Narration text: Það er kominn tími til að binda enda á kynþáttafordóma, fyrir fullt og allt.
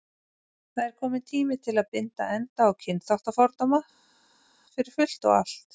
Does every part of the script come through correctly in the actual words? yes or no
yes